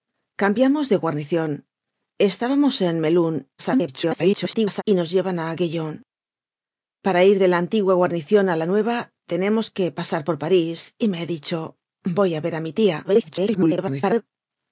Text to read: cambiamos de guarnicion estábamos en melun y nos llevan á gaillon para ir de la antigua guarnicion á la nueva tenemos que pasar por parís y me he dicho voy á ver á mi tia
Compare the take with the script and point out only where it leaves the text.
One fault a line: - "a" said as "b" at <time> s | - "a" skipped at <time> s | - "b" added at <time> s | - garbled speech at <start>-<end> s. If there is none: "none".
- garbled speech at 3.6-4.8 s
- garbled speech at 13.0-14.2 s